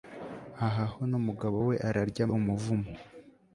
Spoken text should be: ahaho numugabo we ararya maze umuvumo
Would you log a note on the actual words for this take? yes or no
yes